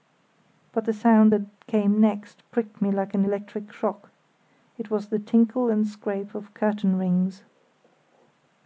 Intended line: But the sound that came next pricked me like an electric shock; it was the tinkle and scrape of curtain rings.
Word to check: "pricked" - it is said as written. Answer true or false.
true